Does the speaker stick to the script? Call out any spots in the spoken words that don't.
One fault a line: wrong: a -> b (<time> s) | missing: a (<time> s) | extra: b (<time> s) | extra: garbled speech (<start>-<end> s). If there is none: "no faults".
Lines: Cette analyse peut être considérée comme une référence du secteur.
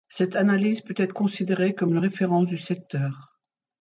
no faults